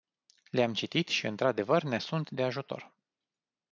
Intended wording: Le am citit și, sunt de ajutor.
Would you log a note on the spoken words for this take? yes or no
yes